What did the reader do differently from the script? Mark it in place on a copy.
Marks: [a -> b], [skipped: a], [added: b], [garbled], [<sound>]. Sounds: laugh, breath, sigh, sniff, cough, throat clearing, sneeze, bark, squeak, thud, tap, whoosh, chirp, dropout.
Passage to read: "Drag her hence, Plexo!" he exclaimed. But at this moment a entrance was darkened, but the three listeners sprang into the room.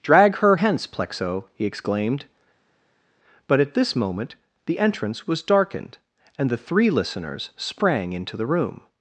"Drag her hence, Plexo!" he exclaimed. But at this moment [a -> the] entrance was darkened, [but -> and] the three listeners sprang into the room.